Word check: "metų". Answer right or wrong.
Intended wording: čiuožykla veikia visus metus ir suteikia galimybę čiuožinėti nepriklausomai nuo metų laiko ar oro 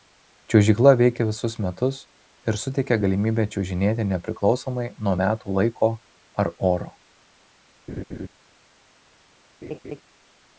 right